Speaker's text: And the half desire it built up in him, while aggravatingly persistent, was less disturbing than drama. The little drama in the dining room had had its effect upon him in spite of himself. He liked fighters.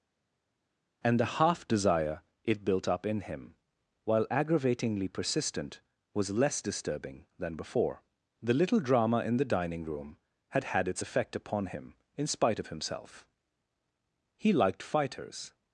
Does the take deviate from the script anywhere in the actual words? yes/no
yes